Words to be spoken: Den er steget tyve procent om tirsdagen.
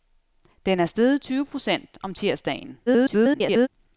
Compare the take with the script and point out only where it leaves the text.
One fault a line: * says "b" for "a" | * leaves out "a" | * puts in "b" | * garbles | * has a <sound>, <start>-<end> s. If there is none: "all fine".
* garbles